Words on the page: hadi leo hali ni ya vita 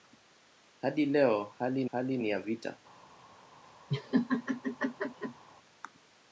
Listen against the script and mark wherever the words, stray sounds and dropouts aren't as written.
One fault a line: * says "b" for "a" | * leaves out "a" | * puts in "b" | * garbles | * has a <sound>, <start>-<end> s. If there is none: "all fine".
* puts in "hali"
* has a laugh, 3.9-5.4 s